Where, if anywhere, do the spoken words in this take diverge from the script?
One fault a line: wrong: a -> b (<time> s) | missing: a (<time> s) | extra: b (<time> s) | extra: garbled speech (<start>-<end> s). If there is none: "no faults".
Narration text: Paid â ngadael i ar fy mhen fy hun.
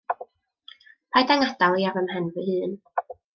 no faults